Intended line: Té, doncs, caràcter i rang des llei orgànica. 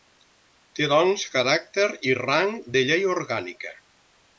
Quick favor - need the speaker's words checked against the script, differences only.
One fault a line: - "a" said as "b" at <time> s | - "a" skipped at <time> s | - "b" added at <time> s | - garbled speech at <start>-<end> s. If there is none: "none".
- "des" said as "de" at 2.8 s